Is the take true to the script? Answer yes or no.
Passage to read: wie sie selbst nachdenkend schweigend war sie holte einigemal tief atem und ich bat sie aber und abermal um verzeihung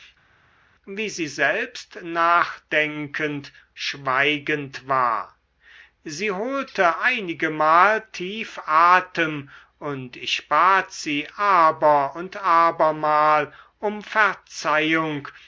yes